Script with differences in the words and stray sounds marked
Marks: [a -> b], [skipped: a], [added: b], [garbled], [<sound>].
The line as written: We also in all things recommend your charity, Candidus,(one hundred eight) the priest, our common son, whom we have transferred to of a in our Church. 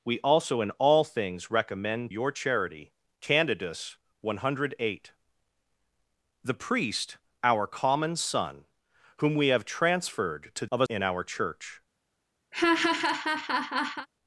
We also in all things recommend your charity, Candidus,(one hundred eight) the priest, our common son, whom we have transferred to of a in our Church. [laugh]